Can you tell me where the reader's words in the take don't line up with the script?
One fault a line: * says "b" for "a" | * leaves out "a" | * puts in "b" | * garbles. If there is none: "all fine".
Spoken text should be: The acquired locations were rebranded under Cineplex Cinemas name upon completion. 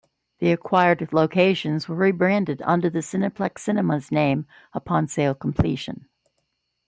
* puts in "the"
* puts in "sale"